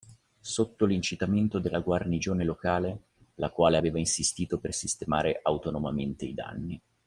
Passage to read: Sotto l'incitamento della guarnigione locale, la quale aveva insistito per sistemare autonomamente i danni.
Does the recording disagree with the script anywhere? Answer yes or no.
no